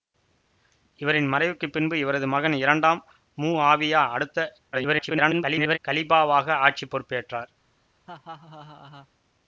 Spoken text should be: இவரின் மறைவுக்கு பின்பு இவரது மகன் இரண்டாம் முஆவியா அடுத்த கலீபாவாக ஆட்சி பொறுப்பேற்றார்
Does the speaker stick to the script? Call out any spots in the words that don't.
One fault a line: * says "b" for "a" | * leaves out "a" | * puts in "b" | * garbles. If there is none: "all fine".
* garbles